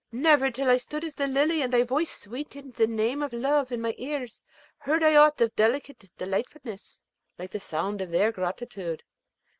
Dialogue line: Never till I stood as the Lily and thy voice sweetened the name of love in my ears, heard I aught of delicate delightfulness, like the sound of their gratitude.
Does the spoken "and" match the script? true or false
true